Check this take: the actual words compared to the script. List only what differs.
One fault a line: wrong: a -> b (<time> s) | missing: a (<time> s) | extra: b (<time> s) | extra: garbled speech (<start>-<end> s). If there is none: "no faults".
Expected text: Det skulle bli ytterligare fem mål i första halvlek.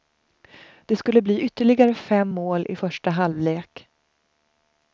no faults